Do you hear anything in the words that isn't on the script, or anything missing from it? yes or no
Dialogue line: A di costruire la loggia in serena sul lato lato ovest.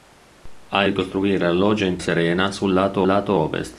no